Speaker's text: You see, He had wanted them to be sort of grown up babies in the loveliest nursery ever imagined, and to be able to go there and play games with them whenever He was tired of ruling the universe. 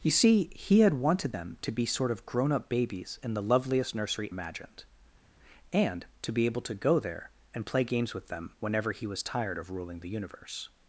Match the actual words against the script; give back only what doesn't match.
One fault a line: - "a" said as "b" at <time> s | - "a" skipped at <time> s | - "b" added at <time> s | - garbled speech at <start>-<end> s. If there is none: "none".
- "ever" skipped at 4.3 s